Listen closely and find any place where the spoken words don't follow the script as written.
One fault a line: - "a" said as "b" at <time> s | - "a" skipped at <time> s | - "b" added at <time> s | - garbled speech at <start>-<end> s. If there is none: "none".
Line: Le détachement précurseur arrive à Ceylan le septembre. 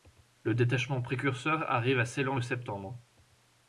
none